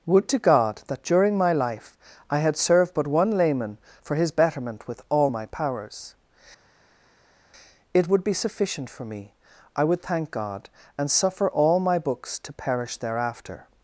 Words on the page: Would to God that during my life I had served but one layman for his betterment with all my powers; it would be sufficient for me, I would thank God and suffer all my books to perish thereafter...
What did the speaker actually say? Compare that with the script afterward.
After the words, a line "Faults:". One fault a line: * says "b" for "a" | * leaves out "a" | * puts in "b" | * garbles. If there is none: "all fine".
Would to God that during my life I had served but one layman for his betterment with all my powers; it would be sufficient for me, I would thank God and suffer all my books to perish thereafter...
Faults:
all fine